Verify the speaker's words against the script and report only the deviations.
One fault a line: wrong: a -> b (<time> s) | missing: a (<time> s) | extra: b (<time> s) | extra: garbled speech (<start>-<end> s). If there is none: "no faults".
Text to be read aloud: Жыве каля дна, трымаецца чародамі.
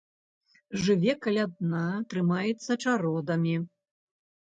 no faults